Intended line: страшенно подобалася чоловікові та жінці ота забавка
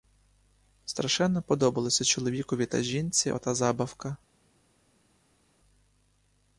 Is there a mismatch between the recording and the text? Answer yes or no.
no